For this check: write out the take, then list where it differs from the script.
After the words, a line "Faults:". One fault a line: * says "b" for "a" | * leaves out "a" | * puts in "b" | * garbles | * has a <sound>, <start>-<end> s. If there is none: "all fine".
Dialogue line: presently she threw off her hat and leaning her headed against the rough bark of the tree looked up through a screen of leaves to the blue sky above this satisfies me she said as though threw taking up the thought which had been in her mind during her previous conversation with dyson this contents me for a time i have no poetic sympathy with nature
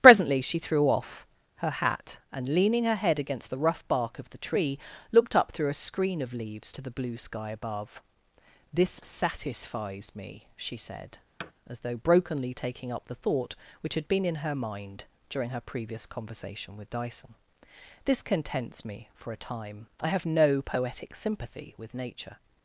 presently she threw off her hat and leaning her head against the rough bark of the tree looked up through a screen of leaves to the blue sky above this satisfies me she said as though brokenly taking up the thought which had been in her mind during her previous conversation with dyson this contents me for a time i have no poetic sympathy with nature
Faults:
* says "head" for "headed"
* has a thud, 11.4-11.5 s
* says "brokenly" for "threw"